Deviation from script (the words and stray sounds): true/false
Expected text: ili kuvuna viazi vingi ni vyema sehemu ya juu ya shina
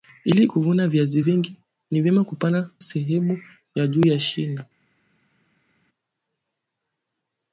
false